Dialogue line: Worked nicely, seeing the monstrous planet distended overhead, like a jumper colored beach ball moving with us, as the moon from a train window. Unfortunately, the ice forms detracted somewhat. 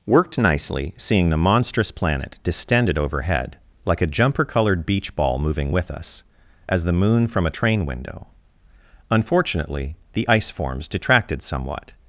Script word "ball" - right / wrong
right